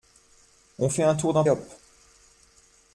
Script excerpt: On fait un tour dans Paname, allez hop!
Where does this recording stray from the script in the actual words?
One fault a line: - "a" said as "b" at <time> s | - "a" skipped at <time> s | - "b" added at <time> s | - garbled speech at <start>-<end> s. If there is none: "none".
- "Paname allez" skipped at 1.4 s